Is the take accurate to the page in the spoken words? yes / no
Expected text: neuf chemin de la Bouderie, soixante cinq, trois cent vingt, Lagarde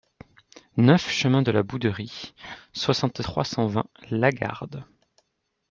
no